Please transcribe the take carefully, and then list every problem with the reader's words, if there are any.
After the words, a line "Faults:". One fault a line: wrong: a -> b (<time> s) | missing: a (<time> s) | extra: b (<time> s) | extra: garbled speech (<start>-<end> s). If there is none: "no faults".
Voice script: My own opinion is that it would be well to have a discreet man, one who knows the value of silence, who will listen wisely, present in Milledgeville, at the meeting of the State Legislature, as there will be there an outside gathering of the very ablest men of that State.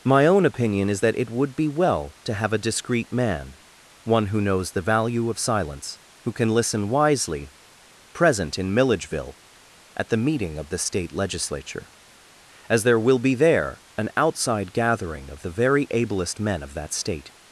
My own opinion is that it would be well to have a discreet man, one who knows the value of silence, who can listen wisely, present in Milledgeville, at the meeting of the State Legislature, as there will be there an outside gathering of the very ablest men of that State.
Faults:
wrong: will -> can (6.3 s)